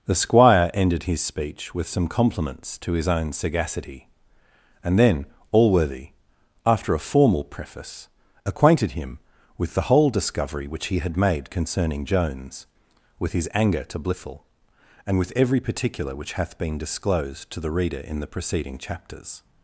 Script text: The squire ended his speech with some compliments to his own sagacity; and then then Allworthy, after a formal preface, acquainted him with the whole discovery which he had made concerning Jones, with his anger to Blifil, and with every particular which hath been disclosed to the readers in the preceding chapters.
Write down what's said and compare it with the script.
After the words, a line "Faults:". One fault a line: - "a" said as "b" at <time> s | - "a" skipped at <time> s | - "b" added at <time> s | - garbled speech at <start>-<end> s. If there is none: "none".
The squire ended his speech with some compliments to his own sagacity; and then Allworthy, after a formal preface, acquainted him with the whole discovery which he had made concerning Jones, with his anger to Blifil, and with every particular which hath been disclosed to the reader in the preceding chapters.
Faults:
- "then" skipped at 5.3 s
- "readers" said as "reader" at 17.7 s